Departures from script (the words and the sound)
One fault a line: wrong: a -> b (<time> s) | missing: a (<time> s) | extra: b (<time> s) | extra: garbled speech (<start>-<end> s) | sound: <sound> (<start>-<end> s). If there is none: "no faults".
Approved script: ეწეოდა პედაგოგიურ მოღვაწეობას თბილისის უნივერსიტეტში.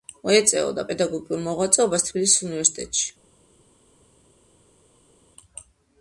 no faults